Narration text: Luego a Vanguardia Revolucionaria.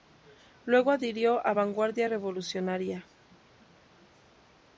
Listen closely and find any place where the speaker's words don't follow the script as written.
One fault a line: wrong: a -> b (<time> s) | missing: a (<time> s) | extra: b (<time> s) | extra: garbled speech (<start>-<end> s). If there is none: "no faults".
extra: adhirió (0.9 s)